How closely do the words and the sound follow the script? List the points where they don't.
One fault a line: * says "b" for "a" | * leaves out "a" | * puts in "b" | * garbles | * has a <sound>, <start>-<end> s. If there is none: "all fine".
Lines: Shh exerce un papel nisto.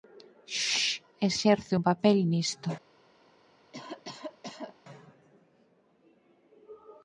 * has a cough, 3.7-4.8 s